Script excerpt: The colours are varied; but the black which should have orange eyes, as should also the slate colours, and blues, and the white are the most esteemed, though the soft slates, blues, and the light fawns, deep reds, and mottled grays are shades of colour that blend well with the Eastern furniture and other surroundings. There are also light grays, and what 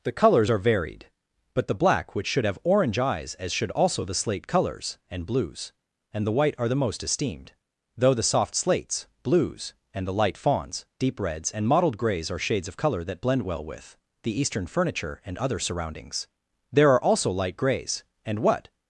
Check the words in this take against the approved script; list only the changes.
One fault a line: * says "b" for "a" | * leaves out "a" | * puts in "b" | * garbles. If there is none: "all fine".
all fine